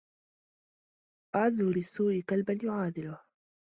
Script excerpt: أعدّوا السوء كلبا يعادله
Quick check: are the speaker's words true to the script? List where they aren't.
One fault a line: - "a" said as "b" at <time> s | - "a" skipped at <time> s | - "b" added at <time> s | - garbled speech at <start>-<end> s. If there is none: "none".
none